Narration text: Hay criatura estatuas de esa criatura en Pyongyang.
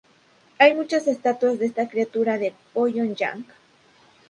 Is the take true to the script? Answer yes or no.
no